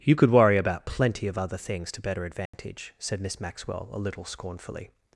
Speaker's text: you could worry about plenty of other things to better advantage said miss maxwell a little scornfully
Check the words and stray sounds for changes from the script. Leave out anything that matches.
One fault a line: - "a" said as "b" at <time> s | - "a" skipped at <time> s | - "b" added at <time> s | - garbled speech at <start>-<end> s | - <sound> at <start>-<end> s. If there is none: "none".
- dropout at 2.5-2.5 s